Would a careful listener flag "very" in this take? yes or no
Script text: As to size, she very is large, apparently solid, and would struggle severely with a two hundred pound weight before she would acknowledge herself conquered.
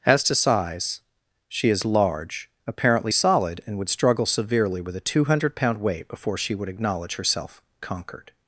yes